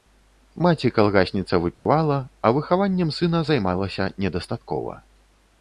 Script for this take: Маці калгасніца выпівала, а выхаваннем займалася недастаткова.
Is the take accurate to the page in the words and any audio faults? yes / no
no